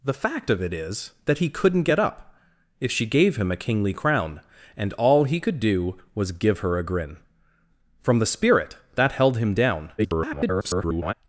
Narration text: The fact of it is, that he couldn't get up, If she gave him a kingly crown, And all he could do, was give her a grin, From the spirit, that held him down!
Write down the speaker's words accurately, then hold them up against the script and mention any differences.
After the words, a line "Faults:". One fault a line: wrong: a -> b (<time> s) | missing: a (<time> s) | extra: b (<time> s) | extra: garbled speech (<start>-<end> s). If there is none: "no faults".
The fact of it is, that he couldn't get up, If she gave him a kingly crown, And all he could do, was give her a grin, From the spirit, that held him down! [garbled]
Faults:
extra: garbled speech (10.0-11.1 s)